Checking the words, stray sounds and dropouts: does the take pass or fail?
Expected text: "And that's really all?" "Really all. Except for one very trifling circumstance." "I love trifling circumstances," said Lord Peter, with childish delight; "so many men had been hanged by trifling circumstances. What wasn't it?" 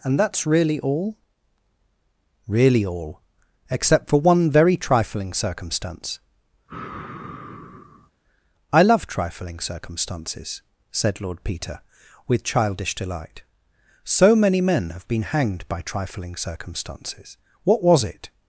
fail